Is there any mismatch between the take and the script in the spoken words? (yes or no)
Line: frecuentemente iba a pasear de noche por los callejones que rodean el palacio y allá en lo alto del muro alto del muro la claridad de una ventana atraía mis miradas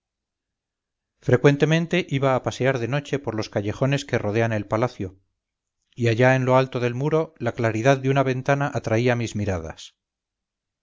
yes